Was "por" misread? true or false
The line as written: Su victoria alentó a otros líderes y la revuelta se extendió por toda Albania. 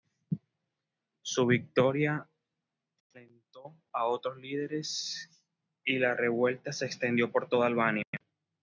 false